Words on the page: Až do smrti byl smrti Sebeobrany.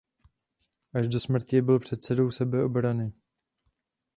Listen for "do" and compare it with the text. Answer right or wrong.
right